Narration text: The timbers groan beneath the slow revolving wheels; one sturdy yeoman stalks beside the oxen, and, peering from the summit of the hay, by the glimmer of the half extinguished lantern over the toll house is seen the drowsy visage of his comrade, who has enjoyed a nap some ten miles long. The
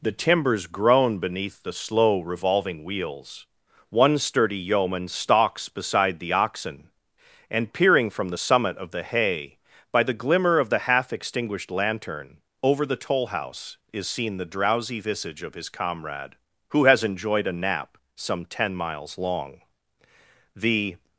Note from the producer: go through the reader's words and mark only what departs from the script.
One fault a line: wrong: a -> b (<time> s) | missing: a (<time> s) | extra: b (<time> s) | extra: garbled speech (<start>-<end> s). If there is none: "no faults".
no faults